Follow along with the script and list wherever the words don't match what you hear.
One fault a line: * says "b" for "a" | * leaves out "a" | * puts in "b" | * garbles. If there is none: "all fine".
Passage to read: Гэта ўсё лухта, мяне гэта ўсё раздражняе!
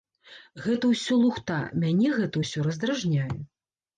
all fine